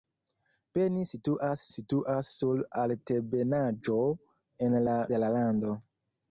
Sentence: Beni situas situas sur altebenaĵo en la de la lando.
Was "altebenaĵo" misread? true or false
false